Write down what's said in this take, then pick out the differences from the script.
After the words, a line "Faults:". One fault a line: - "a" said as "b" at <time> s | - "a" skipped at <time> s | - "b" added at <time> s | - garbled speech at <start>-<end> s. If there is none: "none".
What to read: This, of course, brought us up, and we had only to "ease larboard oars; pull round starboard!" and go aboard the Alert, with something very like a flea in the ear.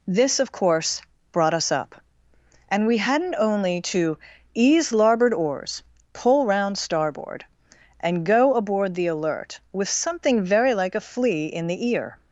This, of course, brought us up, and we hadn't only to "ease larboard oars; pull round starboard!" and go aboard the Alert, with something very like a flea in the ear.
Faults:
- "had" said as "hadn't" at 3.0 s